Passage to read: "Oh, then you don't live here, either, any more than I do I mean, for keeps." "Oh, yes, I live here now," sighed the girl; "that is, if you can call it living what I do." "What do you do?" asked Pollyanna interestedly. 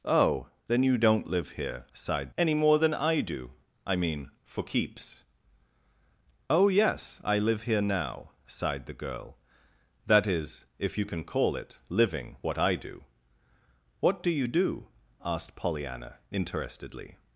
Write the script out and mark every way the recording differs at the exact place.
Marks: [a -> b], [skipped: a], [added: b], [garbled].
"Oh, then you don't live here, [either, -> sighed] any more than I do I mean, for keeps." "Oh, yes, I live here now," sighed the girl; "that is, if you can call it living what I do." "What do you do?" asked Pollyanna interestedly.